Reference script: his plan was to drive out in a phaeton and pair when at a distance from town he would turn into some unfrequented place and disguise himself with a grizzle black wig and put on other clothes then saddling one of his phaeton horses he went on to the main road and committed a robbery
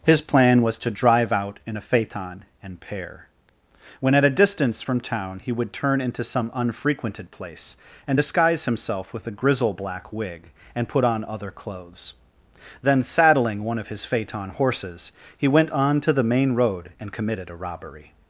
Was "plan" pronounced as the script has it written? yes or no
yes